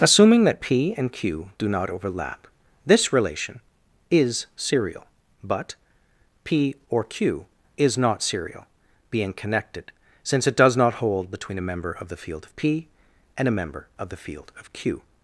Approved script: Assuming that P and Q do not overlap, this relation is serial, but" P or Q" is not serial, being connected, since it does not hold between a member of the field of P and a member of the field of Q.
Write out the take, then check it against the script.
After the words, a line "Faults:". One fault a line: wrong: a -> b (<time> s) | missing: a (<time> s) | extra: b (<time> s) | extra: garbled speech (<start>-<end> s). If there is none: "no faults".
Assuming that P and Q do not overlap, this relation is serial, but" P or Q" is not serial, being connected, since it does not hold between a member of the field of P and a member of the field of Q.
Faults:
no faults